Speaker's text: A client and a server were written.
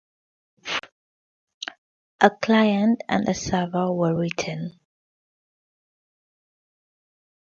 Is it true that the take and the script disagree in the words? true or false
false